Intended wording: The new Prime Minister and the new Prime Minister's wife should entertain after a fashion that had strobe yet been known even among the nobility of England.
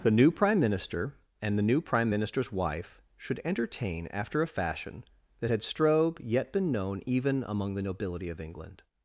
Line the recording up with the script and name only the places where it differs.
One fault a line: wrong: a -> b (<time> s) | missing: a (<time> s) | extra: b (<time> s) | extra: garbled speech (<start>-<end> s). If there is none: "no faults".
no faults